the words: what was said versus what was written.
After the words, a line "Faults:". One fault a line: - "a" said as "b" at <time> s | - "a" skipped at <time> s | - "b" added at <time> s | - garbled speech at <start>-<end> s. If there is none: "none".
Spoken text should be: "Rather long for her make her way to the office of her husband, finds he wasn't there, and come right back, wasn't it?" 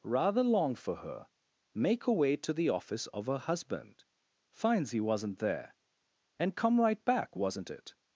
"Rather long for her make her way to the office of her husband, finds he wasn't there, and come right back, wasn't it?"
Faults:
none